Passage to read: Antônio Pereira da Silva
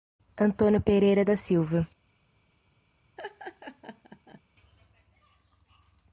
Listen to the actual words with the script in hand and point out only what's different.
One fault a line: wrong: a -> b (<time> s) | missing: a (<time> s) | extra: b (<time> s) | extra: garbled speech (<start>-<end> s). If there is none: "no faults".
no faults